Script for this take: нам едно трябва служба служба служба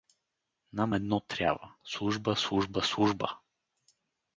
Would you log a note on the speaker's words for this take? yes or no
no